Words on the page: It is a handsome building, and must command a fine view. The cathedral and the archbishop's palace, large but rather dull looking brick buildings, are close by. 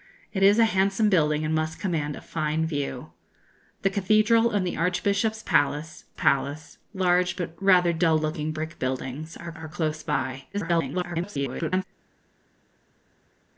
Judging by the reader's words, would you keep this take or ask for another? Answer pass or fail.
fail